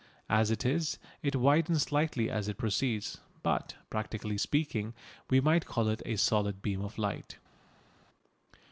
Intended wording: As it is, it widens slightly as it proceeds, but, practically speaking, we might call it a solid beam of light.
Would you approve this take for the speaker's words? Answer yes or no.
yes